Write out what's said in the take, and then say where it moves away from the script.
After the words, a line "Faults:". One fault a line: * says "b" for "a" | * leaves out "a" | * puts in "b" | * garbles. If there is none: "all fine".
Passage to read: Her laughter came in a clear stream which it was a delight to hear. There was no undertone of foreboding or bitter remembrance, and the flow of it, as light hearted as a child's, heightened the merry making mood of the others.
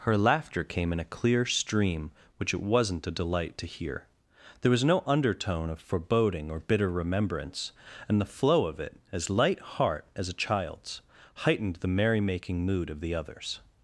Her laughter came in a clear stream which it wasn't a delight to hear. There was no undertone of foreboding or bitter remembrance, and the flow of it, as light heart as a child's, heightened the merry making mood of the others.
Faults:
* says "wasn't" for "was"
* says "heart" for "hearted"